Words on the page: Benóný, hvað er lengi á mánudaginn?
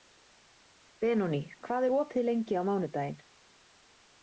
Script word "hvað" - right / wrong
right